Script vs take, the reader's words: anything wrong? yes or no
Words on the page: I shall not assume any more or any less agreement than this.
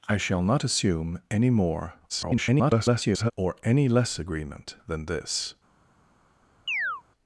yes